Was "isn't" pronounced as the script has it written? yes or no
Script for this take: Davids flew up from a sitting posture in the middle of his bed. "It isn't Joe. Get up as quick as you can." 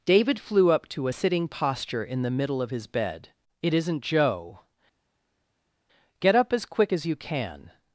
yes